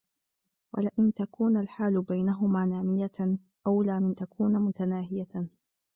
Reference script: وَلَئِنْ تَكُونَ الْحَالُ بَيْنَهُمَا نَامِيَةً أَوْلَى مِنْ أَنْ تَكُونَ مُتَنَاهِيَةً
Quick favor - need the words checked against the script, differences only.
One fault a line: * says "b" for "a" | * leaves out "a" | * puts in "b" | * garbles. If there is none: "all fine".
* leaves out "أَنْ"